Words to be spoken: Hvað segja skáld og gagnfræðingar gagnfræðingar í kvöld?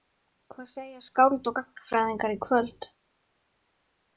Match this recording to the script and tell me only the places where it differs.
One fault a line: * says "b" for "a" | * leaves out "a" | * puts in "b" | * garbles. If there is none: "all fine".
* leaves out "gagnfræðingar"